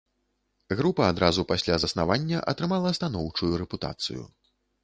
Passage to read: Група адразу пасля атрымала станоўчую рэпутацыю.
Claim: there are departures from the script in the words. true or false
true